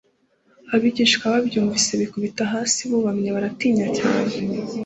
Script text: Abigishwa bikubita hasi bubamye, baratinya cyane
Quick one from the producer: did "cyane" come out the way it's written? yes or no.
yes